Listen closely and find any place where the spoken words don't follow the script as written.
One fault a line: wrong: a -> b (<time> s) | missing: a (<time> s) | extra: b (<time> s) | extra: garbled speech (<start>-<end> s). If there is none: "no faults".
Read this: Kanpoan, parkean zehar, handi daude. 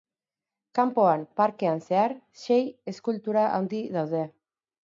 extra: sei eskultura (2.5 s)